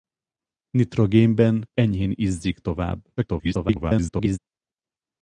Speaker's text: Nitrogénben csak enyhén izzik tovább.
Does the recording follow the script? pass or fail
fail